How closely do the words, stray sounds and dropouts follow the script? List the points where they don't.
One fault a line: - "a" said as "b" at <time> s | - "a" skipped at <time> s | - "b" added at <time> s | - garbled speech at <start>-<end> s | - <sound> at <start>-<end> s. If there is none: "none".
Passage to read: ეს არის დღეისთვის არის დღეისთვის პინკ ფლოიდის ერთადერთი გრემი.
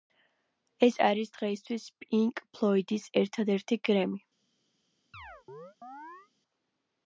- "არის დღეისთვის" skipped at 1.9 s
- chirp at 5.1-6.3 s